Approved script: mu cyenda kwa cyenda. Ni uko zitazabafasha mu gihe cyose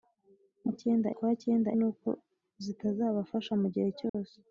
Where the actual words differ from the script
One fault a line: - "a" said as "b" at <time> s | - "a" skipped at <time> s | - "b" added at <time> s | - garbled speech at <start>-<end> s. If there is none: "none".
none